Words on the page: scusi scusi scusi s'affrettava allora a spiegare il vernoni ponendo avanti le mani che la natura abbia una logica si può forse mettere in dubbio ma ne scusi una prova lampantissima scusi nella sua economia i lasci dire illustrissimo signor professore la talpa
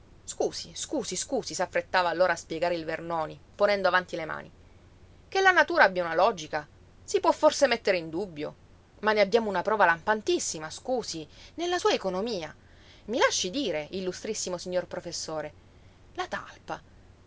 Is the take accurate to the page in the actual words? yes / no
no